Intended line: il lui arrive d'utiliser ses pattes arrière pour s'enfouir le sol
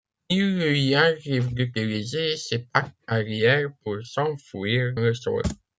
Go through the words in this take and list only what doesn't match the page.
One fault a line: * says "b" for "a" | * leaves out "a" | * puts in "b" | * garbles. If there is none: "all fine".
all fine